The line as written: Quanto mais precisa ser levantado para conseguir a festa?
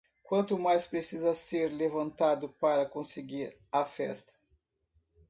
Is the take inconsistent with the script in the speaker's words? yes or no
no